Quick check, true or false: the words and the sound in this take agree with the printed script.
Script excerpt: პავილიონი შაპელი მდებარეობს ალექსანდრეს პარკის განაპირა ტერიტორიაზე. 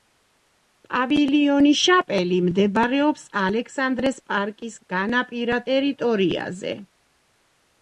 true